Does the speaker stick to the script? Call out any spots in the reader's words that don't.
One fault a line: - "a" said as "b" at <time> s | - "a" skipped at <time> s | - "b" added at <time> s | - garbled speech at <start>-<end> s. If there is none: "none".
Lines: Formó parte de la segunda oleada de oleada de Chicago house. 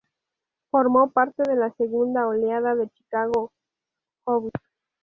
- "oleada de" skipped at 2.9 s